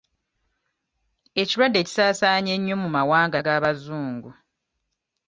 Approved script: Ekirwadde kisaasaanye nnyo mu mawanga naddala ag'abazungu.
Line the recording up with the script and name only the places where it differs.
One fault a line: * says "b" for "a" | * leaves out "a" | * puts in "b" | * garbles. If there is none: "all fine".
* leaves out "naddala"